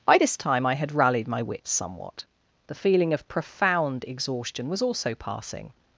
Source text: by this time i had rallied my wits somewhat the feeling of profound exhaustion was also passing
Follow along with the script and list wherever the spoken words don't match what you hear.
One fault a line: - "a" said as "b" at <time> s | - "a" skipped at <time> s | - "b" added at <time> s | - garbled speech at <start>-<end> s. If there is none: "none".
none